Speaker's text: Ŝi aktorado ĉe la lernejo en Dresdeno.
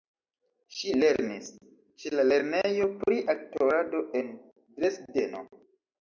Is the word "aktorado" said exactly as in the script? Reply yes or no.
no